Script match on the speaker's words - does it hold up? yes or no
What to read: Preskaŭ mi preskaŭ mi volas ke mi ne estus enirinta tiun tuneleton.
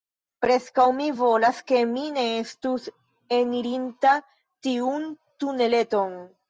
no